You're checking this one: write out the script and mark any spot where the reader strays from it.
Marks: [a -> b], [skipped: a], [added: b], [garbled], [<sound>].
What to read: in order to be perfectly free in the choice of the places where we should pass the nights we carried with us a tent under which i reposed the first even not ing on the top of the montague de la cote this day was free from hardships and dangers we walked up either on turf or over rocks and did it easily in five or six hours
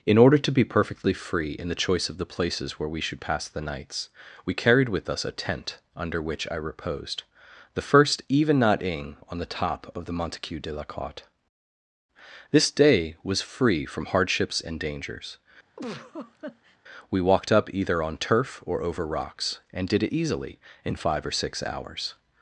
in order to be perfectly free in the choice of the places where we should pass the nights we carried with us a tent under which i reposed the first even not ing on the top of the montague de la cote this day was free from hardships and dangers [laugh] we walked up either on turf or over rocks and did it easily in five or six hours